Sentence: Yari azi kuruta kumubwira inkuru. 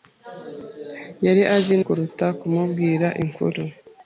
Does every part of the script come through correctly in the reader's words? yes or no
yes